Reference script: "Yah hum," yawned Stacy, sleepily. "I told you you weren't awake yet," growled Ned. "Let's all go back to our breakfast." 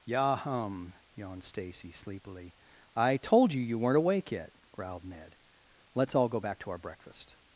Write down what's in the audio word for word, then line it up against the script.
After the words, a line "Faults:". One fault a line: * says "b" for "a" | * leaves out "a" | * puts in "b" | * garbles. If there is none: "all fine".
"Yah hum," yawned Stacy, sleepily. "I told you you weren't awake yet," growled Ned. "Let's all go back to our breakfast."
Faults:
all fine